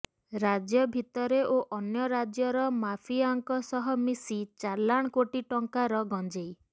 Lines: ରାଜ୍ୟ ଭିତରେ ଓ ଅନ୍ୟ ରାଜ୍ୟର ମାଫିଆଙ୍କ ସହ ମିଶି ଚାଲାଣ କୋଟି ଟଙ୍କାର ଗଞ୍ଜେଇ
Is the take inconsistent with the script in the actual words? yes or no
no